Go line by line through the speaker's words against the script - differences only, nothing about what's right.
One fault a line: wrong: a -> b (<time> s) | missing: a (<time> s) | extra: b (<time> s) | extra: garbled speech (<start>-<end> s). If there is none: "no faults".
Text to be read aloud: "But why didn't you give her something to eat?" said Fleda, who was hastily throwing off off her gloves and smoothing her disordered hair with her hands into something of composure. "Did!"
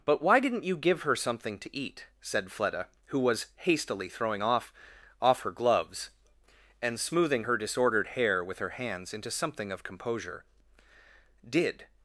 no faults